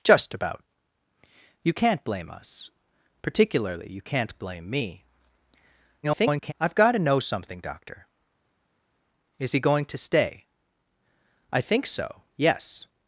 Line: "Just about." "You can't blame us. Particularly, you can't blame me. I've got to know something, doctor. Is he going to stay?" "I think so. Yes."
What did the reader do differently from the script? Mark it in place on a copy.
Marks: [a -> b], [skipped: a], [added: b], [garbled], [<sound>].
"Just about." "You can't blame us. Particularly, you can't blame me. [garbled] I've got to know something, doctor. Is he going to stay?" "I think so. Yes."